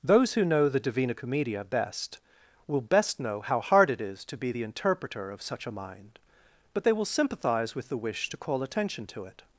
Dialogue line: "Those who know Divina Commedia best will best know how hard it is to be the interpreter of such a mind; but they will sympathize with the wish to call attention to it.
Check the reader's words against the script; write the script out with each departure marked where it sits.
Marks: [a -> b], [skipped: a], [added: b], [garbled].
"Those who know [added: the] Divina Commedia best will best know how hard it is to be the interpreter of such a mind; but they will sympathize with the wish to call attention to it.